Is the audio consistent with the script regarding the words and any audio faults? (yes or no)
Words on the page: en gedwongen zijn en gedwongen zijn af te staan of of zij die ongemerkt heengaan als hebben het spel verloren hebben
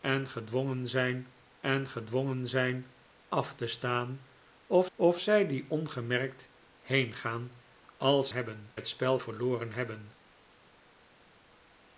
yes